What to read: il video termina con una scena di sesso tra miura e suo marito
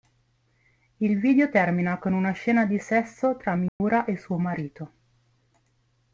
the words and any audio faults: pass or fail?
fail